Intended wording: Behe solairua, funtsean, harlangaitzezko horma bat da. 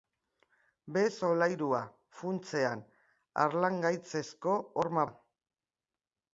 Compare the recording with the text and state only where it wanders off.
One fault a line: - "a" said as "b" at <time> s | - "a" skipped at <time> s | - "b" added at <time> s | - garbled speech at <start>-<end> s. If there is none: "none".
- "bat" skipped at 5.1 s